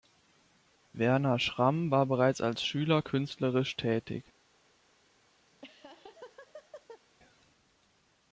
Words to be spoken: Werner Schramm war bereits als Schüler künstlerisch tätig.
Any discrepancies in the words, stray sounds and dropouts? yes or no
yes